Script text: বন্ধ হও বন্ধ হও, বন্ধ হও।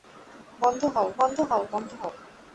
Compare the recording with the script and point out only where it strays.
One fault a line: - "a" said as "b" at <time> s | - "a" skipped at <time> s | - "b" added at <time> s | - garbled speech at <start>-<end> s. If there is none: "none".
none